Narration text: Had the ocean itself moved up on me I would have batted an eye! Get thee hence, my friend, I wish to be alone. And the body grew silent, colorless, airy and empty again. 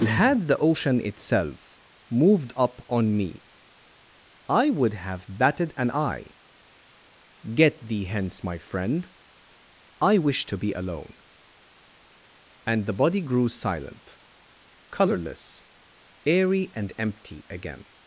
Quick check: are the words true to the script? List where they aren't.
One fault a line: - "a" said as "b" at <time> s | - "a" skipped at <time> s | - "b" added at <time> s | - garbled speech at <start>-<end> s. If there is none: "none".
none